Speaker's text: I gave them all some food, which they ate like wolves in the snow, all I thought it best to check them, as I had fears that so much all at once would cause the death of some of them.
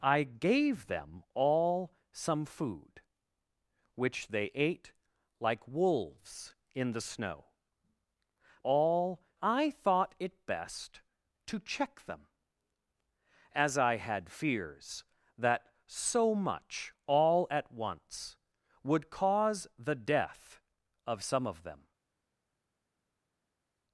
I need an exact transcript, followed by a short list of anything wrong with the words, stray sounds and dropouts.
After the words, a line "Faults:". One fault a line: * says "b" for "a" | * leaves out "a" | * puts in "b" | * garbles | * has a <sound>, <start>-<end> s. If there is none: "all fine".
I gave them all some food, which they ate like wolves in the snow, all I thought it best to check them, as I had fears that so much all at once would cause the death of some of them.
Faults:
all fine